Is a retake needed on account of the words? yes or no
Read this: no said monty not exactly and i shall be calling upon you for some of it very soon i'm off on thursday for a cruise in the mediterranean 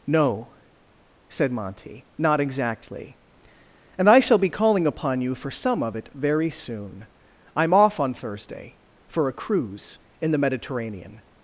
no